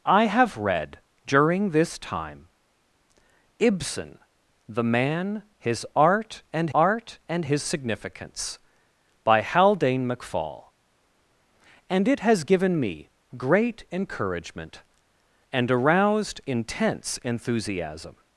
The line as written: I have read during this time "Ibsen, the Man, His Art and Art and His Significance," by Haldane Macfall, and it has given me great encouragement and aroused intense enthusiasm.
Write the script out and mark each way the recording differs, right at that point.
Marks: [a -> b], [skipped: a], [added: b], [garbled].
I have read during this time "Ibsen, the Man, His Art and Art and His Significance," by Haldane Macfall, and it has given me great encouragement and aroused intense enthusiasm.